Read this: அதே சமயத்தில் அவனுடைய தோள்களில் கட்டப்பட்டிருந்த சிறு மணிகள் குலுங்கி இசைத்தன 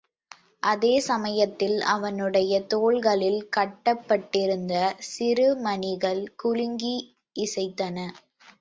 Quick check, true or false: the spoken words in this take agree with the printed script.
true